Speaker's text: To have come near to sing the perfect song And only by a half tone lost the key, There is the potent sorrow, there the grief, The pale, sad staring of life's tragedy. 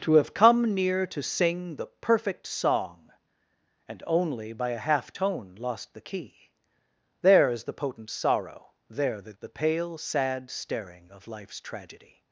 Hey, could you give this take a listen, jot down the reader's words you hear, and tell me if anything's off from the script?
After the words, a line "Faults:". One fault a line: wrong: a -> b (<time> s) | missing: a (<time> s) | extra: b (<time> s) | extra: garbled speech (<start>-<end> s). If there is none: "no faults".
To have come near to sing the perfect song And only by a half tone lost the key, There is the potent sorrow, there the The pale, sad staring of life's tragedy.
Faults:
missing: grief (9.3 s)